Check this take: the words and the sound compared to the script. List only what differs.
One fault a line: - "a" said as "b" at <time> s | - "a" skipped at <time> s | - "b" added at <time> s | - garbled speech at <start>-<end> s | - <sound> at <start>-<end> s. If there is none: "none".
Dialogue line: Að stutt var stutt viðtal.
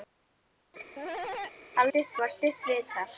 - cough at 1.0-1.6 s